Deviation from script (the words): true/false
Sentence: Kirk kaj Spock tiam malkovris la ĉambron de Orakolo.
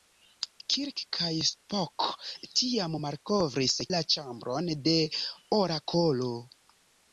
false